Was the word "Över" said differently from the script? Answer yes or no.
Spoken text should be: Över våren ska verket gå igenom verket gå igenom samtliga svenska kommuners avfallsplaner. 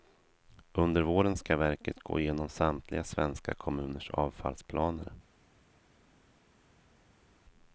yes